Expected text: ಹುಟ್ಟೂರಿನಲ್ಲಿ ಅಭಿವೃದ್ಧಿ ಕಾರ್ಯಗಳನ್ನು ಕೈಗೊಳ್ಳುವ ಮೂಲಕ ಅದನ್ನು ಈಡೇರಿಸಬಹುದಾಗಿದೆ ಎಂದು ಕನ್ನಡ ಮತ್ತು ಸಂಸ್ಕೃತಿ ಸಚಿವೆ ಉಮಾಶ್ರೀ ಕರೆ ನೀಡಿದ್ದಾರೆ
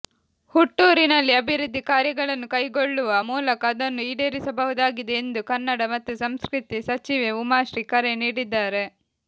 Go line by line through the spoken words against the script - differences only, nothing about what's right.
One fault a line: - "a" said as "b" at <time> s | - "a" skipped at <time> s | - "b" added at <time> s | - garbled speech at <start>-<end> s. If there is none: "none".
none